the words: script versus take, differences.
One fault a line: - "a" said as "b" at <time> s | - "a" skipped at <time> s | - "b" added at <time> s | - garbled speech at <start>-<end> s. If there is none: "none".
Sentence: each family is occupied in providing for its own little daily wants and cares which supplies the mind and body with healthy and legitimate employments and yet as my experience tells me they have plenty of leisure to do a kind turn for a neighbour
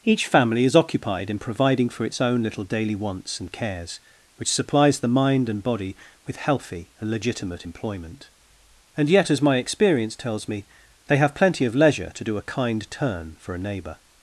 - "employments" said as "employment" at 7.6 s